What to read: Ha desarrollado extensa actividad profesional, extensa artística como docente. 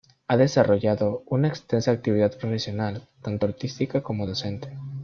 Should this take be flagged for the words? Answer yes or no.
yes